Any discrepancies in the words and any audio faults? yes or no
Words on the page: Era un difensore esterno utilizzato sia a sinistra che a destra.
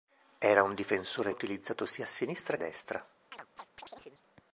yes